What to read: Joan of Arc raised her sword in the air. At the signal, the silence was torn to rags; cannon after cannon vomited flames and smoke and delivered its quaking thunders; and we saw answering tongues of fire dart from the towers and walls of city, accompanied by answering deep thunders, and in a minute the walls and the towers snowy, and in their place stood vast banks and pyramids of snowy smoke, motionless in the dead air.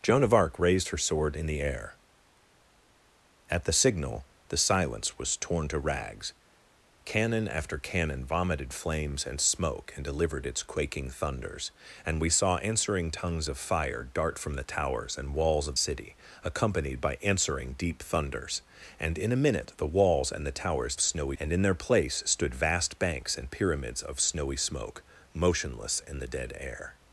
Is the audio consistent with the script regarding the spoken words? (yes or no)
yes